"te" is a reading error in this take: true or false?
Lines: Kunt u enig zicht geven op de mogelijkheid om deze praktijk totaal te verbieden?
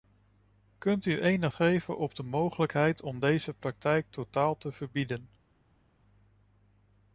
false